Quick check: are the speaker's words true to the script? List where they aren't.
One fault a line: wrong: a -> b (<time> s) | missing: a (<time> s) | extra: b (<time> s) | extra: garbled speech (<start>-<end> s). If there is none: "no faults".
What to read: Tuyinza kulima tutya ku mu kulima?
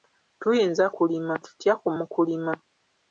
no faults